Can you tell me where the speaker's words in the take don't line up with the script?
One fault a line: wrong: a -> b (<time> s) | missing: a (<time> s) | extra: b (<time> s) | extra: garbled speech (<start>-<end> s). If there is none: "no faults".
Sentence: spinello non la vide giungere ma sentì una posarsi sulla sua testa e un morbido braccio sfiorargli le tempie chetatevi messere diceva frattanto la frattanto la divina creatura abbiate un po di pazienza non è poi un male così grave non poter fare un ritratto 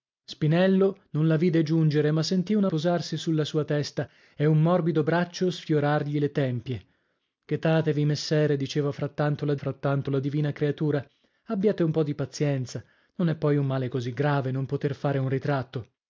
no faults